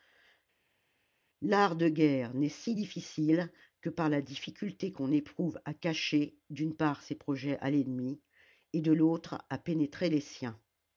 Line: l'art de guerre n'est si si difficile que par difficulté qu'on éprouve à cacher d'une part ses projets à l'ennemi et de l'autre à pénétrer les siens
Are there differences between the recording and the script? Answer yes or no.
yes